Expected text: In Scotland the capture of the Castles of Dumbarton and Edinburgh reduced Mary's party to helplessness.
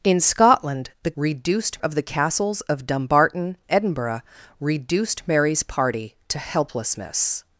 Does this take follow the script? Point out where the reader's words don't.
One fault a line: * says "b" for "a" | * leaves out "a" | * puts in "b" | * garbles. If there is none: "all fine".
* says "reduced" for "capture"
* leaves out "and"